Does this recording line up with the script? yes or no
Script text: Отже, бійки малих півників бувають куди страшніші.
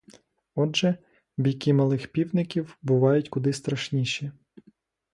yes